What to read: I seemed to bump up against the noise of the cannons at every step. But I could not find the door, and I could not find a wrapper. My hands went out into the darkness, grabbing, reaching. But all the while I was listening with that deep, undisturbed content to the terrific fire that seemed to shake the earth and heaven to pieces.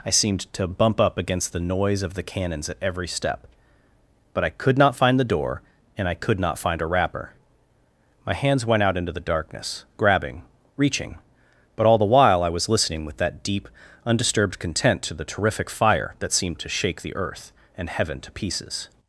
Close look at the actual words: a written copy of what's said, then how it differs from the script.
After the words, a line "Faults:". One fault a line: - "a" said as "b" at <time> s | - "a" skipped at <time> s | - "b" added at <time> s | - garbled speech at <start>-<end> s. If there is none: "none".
I seemed to bump up against the noise of the cannons at every step. But I could not find the door, and I could not find a wrapper. My hands went out into the darkness, grabbing, reaching. But all the while I was listening with that deep, undisturbed content to the terrific fire that seemed to shake the earth and heaven to pieces.
Faults:
none